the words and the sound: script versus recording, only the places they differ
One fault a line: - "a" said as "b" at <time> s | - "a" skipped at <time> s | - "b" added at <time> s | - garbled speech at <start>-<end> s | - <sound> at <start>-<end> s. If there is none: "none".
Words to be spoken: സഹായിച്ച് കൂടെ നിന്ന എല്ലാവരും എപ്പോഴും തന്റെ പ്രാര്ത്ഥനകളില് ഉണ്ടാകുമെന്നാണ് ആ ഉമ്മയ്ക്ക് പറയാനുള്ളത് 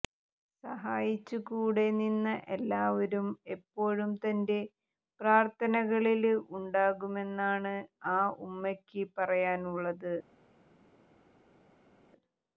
none